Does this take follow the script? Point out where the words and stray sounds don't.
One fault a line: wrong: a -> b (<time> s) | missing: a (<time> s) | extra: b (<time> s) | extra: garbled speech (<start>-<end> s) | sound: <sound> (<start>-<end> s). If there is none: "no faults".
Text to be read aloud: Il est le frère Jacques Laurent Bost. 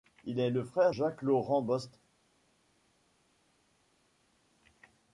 no faults